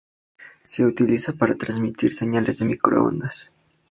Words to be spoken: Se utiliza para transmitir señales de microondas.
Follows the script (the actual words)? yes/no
yes